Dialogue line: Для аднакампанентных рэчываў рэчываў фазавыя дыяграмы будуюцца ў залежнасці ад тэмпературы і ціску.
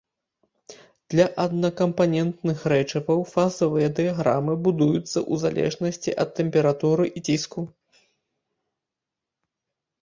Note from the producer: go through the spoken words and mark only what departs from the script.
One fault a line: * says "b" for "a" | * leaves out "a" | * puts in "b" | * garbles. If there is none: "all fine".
* leaves out "рэчываў"